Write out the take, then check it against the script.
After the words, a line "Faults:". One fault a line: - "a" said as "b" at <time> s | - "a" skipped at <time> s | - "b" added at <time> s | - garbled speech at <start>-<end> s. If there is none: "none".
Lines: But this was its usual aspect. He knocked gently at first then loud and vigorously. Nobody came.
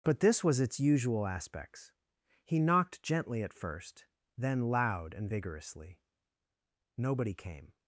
But this was its usual aspects. He knocked gently at first then loud and vigorously. Nobody came.
Faults:
- "aspect" said as "aspects" at 1.3 s